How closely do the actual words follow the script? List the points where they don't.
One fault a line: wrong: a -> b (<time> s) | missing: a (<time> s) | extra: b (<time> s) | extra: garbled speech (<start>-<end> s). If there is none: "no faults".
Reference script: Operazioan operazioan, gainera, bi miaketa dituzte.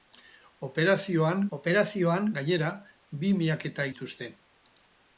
no faults